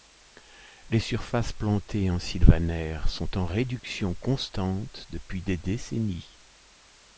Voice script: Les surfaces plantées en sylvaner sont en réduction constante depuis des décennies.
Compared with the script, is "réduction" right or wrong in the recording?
right